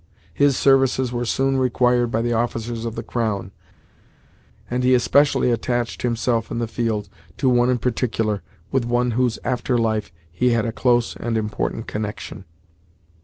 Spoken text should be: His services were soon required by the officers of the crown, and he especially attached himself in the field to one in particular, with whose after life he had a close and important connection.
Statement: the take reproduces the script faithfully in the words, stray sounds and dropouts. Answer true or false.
true